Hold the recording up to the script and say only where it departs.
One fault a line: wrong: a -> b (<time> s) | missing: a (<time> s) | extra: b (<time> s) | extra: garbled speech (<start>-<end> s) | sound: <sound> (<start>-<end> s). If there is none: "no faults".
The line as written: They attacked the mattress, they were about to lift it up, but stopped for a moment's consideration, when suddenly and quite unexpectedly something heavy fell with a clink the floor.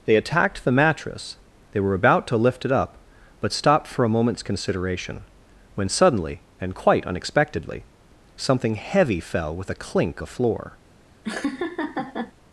sound: laugh (11.2-12.3 s)